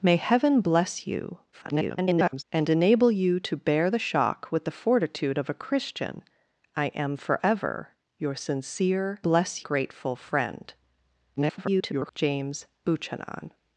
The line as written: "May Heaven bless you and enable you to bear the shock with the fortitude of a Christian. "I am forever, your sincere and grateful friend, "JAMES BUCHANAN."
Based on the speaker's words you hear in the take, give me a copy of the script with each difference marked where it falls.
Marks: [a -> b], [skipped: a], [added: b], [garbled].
"May Heaven bless you [garbled] and enable you to bear the shock with the fortitude of a Christian. "I am forever, your sincere [and -> bless] grateful friend, [garbled] "JAMES BUCHANAN."